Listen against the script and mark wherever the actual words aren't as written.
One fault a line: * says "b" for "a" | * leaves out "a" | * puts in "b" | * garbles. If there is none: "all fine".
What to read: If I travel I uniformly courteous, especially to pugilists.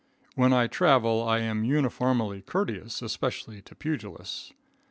* says "When" for "If"
* puts in "am"